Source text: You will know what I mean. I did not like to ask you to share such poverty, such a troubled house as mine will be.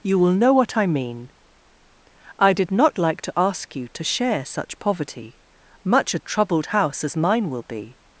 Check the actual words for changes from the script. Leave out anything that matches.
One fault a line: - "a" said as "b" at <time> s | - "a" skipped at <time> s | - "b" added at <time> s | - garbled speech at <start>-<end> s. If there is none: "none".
- "such" said as "much" at 5.8 s